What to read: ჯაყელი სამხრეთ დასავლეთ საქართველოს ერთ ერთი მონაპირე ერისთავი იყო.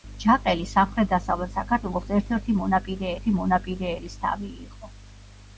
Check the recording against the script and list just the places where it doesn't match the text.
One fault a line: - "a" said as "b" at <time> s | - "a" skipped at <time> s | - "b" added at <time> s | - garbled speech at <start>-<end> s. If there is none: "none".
- "ერთი მონაპირე" added at 3.2 s